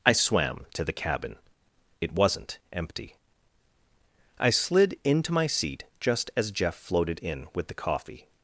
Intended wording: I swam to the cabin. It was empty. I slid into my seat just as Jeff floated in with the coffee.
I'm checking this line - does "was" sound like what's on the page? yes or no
no